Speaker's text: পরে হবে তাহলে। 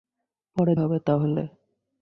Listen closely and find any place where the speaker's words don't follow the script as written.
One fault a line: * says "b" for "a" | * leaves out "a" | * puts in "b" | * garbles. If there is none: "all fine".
all fine